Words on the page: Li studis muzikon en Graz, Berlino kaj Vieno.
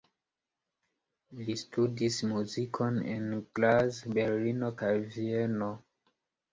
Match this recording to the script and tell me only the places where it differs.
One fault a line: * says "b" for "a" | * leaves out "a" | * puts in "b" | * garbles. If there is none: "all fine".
all fine